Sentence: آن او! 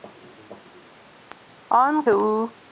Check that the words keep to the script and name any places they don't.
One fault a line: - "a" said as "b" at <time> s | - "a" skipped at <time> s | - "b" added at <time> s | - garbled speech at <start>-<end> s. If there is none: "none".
none